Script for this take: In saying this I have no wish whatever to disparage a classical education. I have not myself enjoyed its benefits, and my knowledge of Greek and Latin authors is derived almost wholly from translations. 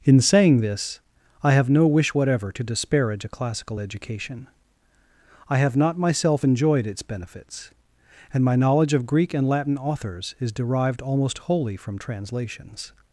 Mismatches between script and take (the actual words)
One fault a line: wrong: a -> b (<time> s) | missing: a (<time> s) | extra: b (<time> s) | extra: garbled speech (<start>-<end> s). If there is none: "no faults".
no faults